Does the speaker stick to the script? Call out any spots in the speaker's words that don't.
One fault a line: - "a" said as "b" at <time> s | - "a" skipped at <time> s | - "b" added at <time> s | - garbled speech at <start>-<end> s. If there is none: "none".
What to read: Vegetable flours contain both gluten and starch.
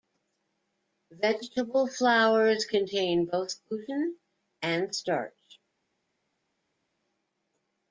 none